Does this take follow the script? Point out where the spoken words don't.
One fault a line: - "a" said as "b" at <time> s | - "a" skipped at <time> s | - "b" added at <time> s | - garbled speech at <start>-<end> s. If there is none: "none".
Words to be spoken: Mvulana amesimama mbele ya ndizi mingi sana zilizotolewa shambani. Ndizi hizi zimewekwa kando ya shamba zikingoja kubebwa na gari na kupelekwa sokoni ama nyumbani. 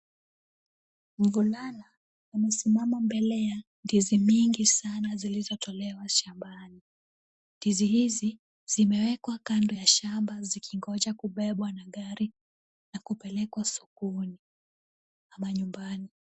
none